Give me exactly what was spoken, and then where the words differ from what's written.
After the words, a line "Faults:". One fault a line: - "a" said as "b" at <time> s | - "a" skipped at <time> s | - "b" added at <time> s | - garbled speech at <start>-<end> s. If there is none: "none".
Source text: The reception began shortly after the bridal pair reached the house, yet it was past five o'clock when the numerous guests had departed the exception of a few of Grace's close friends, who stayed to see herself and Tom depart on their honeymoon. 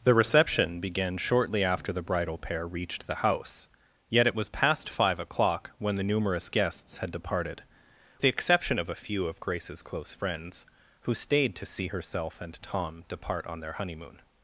The reception began shortly after the bridal pair reached the house, yet it was past five o'clock when the numerous guests had departed the exception of a few of Grace's close friends, who stayed to see herself and Tom depart on their honeymoon.
Faults:
none